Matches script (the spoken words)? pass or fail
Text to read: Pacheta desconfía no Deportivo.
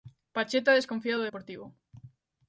fail